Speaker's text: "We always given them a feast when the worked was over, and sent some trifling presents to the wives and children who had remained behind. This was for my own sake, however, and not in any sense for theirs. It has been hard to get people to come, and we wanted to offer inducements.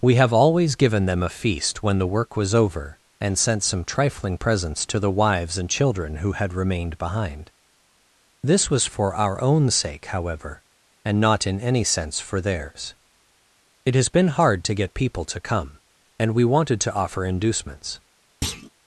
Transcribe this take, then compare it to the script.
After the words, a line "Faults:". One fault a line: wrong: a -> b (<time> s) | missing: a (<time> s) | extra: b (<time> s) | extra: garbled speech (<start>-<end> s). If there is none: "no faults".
"We have always given them a feast when the work was over, and sent some trifling presents to the wives and children who had remained behind. This was for our own sake, however, and not in any sense for theirs. It has been hard to get people to come, and we wanted to offer inducements.
Faults:
extra: have (0.1 s)
wrong: worked -> work (2.1 s)
wrong: my -> our (9.1 s)